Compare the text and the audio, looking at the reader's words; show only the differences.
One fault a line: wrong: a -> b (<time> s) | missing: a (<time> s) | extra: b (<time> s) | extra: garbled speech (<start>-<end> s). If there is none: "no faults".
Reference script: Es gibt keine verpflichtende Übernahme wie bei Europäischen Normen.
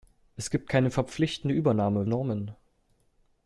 missing: wie bei Europäischen (2.1 s)